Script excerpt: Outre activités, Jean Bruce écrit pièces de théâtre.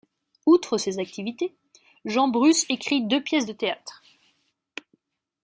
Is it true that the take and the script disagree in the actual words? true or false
true